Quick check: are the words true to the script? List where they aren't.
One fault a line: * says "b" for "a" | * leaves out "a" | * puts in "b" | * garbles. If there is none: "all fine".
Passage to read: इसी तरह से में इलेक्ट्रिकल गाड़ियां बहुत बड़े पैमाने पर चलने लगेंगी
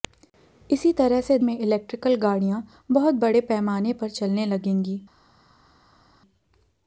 all fine